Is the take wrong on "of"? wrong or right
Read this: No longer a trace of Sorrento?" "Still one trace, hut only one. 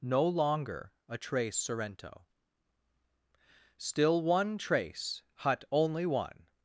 wrong